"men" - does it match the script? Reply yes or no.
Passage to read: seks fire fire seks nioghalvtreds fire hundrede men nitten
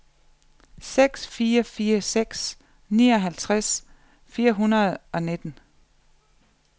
no